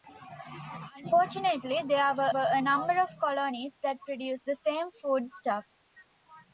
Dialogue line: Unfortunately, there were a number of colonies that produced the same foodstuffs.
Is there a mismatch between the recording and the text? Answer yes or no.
yes